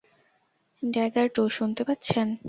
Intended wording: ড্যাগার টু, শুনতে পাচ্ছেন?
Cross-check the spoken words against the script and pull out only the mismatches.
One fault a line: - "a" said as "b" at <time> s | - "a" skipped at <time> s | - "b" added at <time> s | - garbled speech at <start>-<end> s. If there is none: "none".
none